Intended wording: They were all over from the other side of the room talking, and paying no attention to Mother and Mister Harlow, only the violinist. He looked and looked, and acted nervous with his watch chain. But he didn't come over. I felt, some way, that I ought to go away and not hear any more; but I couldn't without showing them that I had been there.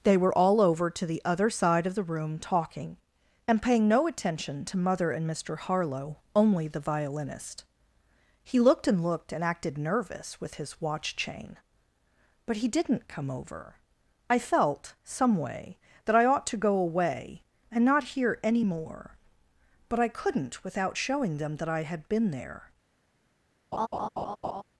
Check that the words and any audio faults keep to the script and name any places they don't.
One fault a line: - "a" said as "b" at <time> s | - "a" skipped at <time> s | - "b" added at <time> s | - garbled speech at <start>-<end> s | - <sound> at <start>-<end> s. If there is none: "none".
- "from" said as "to" at 0.9 s
- laugh at 23.7-24.6 s